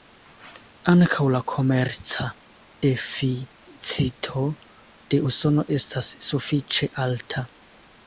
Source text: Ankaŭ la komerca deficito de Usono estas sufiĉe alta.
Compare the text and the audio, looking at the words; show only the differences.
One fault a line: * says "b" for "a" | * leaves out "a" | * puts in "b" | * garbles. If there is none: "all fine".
all fine